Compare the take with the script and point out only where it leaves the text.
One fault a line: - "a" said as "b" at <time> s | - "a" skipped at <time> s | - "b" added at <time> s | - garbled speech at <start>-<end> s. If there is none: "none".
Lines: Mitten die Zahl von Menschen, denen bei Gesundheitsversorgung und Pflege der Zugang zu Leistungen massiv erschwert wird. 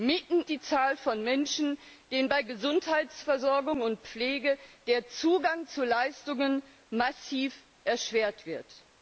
none